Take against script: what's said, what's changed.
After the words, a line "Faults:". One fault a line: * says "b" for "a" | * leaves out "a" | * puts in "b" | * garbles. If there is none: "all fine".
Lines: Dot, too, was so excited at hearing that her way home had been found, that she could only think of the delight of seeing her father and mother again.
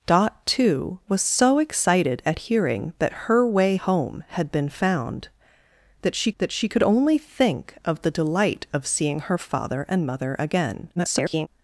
Dot, too, was so excited at hearing that her way home had been found, that she that she could only think of the delight of seeing her father and mother again. [garbled]
Faults:
* puts in "that she"
* garbles